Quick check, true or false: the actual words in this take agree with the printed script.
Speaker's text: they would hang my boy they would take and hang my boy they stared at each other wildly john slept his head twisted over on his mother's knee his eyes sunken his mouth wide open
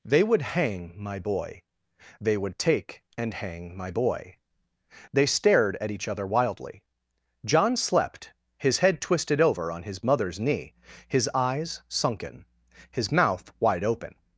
true